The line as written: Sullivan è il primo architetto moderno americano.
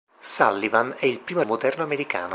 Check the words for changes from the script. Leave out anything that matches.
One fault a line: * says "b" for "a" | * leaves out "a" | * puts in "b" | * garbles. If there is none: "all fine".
* leaves out "architetto"